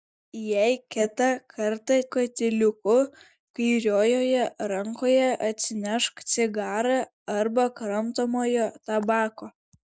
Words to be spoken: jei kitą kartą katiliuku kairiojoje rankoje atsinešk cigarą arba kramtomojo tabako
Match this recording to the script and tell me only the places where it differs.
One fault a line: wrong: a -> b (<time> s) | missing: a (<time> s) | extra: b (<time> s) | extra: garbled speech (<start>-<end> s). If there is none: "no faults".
no faults